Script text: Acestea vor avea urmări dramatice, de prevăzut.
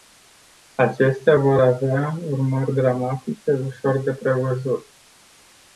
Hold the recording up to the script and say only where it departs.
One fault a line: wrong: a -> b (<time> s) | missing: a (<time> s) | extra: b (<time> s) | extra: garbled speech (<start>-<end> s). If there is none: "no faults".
extra: ușor (3.6 s)